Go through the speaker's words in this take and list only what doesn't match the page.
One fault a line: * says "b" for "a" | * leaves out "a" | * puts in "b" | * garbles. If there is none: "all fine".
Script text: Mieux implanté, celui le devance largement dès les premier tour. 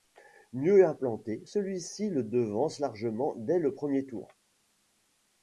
* puts in "ci"
* says "le" for "les"